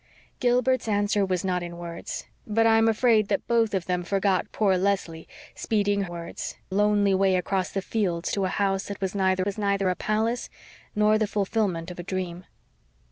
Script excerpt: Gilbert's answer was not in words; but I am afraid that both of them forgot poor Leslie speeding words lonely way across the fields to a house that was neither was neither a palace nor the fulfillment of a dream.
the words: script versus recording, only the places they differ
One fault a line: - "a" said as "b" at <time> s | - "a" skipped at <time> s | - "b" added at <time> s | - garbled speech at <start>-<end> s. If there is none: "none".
none